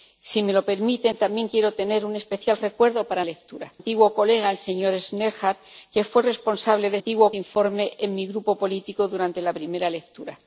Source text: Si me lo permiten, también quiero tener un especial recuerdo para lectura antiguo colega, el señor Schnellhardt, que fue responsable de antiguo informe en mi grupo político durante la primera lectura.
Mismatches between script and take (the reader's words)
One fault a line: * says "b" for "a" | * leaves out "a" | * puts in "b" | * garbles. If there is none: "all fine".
all fine